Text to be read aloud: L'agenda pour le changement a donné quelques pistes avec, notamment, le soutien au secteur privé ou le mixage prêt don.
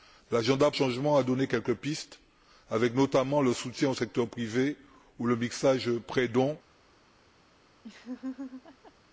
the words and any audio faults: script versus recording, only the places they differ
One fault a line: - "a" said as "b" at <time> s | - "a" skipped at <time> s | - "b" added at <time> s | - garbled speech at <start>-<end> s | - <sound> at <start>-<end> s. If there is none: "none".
- "pour le" skipped at 0.7 s
- laugh at 7.8-8.9 s